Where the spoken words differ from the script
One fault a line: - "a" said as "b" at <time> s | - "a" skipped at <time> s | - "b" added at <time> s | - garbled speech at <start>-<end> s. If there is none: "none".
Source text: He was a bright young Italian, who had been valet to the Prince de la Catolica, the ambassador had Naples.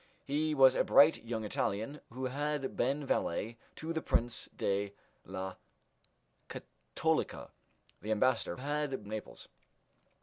none